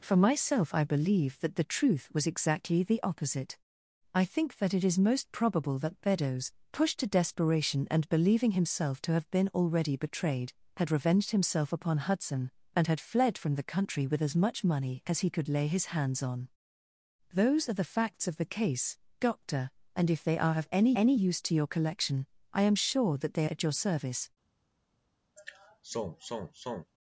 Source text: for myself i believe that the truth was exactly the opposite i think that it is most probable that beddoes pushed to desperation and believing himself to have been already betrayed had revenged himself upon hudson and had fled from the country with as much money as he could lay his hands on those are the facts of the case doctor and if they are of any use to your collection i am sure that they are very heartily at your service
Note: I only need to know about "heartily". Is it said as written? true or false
false